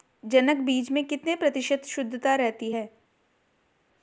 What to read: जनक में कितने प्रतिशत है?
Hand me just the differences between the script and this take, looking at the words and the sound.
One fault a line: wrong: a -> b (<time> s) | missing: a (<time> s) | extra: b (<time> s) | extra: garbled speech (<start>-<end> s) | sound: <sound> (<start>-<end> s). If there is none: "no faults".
extra: बीज (0.6 s)
extra: शुद्धता रहती (1.9 s)